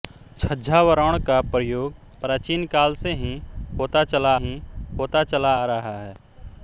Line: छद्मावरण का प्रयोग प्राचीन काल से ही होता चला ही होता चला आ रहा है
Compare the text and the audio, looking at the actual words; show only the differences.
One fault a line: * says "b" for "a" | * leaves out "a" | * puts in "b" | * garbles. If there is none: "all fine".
all fine